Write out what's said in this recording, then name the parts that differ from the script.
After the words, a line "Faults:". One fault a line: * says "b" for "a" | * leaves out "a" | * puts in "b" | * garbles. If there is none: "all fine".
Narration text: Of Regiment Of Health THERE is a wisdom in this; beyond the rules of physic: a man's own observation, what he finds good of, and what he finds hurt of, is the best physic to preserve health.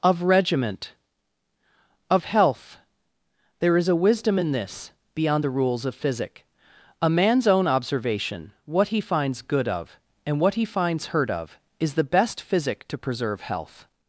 Of Regiment Of Health THERE is a wisdom in this; beyond the rules of physic: a man's own observation, what he finds good of, and what he finds hurt of, is the best physic to preserve health.
Faults:
all fine